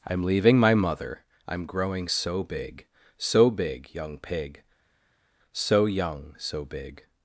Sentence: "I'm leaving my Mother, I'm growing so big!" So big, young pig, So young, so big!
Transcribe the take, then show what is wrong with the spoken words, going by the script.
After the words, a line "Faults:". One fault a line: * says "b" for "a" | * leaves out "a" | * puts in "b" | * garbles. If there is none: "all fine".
"I'm leaving my Mother, I'm growing so big!" So big, young pig, So young, so big!
Faults:
all fine